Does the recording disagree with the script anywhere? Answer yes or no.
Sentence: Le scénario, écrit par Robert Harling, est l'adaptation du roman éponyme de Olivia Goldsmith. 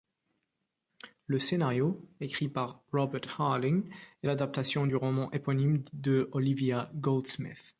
no